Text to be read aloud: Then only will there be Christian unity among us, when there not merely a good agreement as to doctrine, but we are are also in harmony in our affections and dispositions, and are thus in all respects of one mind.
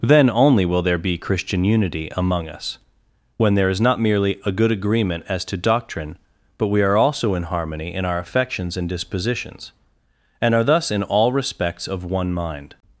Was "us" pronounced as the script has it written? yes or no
yes